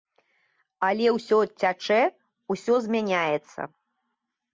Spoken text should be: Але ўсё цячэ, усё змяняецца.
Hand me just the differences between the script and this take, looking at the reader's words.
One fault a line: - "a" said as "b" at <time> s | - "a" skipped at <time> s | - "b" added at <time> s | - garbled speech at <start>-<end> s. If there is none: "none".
none